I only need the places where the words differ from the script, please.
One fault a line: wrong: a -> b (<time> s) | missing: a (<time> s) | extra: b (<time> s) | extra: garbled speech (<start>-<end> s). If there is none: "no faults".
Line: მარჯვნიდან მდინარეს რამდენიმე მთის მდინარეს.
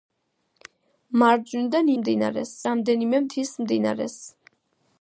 no faults